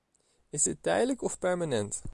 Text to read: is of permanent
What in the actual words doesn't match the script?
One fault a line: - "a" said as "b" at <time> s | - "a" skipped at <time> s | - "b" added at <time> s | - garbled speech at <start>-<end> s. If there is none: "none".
- "dit tijdelijk" added at 0.6 s